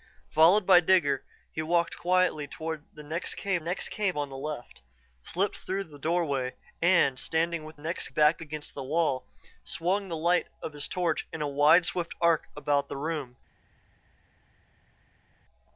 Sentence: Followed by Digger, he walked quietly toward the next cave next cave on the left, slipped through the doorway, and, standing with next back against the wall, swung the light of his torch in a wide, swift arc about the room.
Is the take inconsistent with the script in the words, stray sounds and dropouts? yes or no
no